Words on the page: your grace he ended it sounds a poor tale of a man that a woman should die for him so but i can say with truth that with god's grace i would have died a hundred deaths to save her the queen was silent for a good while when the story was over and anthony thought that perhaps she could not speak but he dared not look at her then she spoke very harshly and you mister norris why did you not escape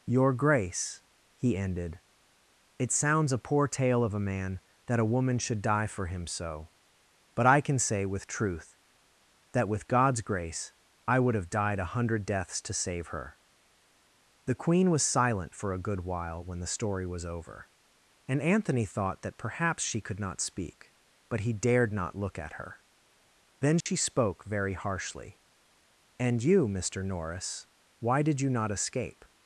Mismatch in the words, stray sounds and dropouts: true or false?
true